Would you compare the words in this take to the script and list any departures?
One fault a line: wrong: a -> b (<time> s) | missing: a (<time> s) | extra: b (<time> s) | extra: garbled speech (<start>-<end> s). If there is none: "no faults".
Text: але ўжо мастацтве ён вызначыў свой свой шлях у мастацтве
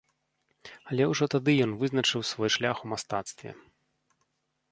wrong: мастацтве -> тады (1.3 s)
missing: свой (2.5 s)